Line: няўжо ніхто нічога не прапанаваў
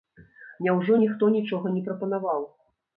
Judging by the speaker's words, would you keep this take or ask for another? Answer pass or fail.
pass